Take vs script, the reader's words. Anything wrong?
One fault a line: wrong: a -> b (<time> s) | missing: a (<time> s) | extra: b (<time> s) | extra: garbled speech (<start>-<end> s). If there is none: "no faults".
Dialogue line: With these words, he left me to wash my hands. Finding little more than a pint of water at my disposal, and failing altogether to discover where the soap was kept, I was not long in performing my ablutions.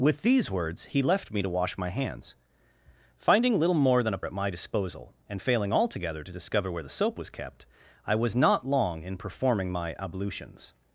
missing: pint of water (4.2 s)